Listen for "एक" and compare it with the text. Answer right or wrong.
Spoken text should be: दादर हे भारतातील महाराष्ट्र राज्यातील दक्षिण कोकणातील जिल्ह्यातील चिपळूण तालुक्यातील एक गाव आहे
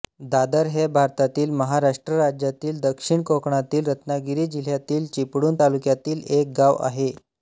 right